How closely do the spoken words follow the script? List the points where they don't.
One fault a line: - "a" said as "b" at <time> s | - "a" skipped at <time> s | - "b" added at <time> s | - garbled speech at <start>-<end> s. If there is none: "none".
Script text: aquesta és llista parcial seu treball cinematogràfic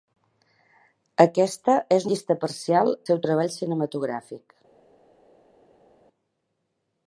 none